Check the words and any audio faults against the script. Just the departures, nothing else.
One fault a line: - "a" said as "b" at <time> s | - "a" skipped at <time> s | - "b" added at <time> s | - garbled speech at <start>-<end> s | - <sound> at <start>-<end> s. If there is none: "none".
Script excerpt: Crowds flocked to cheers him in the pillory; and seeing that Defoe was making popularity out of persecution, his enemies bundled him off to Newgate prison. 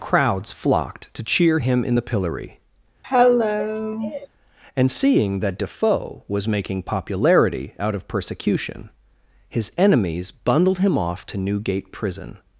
- "cheers" said as "cheer" at 1.2 s
- cough at 3.0-4.3 s